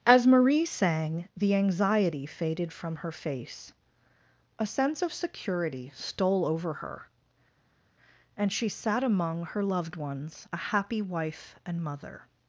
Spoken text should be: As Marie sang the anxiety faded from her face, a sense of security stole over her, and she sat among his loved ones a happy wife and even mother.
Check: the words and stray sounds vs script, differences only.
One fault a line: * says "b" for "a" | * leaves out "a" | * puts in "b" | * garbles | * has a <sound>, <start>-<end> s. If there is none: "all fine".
* says "her" for "his"
* leaves out "even"